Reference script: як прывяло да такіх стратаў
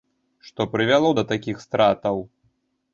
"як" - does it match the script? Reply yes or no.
no